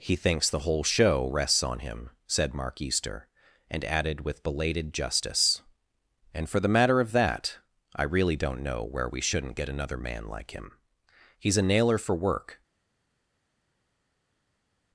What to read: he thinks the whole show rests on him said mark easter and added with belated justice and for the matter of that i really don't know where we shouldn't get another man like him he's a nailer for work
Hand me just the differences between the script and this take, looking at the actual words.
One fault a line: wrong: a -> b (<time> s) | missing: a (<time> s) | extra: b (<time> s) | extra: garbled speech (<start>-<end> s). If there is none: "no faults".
no faults